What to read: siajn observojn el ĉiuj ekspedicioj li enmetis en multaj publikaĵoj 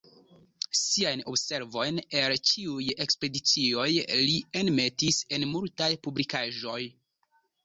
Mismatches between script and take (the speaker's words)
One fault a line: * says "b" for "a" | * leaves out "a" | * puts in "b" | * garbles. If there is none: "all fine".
all fine